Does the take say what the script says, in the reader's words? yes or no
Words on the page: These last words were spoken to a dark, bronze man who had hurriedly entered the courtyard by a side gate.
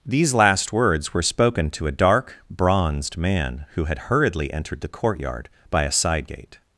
no